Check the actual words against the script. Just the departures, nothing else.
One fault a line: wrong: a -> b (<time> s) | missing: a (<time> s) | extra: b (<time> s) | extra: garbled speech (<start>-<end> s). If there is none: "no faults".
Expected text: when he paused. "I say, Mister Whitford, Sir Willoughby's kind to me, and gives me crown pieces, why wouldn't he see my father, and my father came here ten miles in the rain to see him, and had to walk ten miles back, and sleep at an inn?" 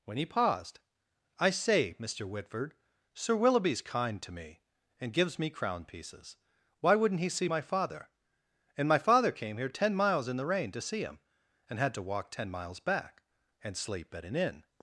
no faults